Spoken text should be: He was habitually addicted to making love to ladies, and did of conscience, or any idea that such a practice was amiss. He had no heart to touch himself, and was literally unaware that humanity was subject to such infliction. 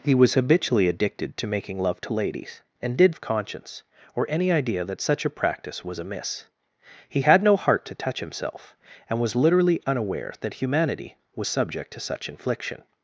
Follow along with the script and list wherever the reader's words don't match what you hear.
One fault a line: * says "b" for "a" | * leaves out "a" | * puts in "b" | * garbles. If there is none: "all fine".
all fine